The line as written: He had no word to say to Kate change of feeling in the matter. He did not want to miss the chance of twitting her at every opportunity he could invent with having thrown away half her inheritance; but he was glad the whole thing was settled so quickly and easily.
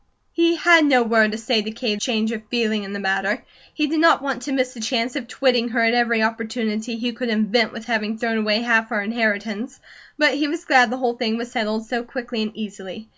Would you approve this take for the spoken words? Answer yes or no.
yes